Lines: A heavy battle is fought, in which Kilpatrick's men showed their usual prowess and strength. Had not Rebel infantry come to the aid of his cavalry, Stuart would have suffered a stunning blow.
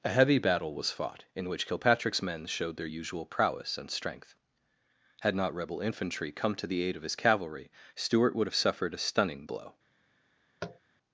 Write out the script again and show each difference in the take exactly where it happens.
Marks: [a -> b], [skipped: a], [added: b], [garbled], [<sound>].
A heavy battle [is -> was] fought, in which Kilpatrick's men showed their usual prowess and strength. Had not Rebel infantry come to the aid of his cavalry, Stuart would have suffered a stunning blow. [tap]